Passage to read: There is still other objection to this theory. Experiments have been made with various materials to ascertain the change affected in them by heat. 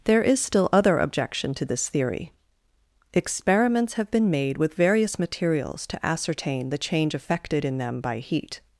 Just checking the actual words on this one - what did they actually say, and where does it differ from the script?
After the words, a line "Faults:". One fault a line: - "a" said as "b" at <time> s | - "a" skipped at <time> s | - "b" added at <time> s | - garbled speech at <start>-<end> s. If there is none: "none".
There is still other objection to this theory. Experiments have been made with various materials to ascertain the change affected in them by heat.
Faults:
none